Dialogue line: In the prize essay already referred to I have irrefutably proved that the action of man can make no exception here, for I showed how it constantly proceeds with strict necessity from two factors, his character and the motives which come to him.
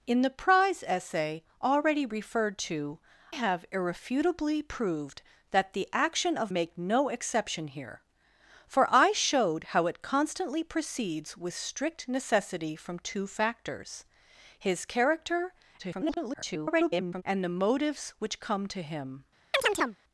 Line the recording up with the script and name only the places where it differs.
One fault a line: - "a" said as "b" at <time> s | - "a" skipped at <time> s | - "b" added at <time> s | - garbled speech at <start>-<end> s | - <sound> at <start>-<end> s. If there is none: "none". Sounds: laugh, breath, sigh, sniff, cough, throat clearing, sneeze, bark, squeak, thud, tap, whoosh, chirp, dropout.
- "I" skipped at 3.0 s
- "man can" skipped at 6.5 s
- garbled speech at 15.8-17.2 s
- chirp at 19.5-20.0 s